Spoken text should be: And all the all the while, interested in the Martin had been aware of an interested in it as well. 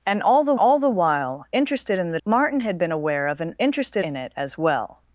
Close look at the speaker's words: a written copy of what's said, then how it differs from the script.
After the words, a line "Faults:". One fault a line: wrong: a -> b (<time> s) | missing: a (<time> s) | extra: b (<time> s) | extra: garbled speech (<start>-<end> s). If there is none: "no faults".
And all the all the while, interested in the Martin had been aware of an interested in it as well.
Faults:
no faults